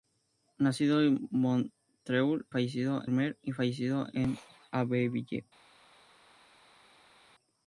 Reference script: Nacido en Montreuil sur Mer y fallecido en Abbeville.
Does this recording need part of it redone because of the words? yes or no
yes